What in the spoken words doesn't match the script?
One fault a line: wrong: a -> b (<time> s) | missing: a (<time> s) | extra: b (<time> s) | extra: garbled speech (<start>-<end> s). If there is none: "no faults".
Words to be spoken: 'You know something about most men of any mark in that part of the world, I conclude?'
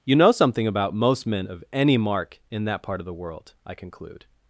no faults